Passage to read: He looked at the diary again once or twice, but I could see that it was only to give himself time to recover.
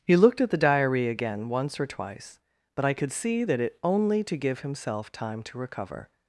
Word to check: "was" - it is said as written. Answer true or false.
false